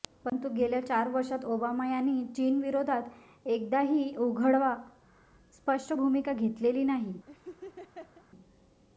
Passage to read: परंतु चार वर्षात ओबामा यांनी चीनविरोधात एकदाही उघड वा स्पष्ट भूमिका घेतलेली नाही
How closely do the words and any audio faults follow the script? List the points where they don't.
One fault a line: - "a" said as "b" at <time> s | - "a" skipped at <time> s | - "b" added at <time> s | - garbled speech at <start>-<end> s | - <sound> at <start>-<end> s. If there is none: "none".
- "गेल्या" added at 0.5 s
- laugh at 7.3-8.3 s